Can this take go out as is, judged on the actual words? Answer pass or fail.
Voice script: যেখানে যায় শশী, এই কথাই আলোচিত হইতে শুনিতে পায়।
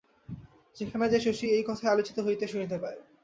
pass